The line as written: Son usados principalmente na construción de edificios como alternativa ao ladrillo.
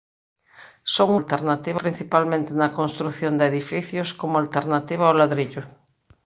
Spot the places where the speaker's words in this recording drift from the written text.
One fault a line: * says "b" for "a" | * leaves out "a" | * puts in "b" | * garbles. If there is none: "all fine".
* says "alternativa" for "usados"